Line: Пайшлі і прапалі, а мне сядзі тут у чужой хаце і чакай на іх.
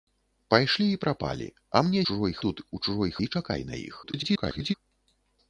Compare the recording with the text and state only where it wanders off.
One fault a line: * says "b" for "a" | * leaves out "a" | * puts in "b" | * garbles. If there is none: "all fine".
* says "чужой" for "сядзі"
* leaves out "хаце"
* garbles